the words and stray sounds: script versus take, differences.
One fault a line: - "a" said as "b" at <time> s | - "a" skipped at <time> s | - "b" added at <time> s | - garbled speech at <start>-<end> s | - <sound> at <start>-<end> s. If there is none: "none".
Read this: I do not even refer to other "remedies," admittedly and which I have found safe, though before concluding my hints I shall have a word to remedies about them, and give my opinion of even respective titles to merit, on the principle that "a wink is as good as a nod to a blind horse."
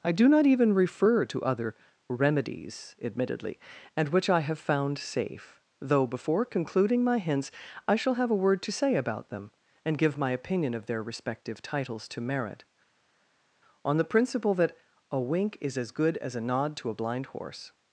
- "remedies" said as "say" at 8.7 s
- "even" said as "their" at 10.9 s